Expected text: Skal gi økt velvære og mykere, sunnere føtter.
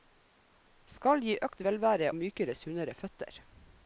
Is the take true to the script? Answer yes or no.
no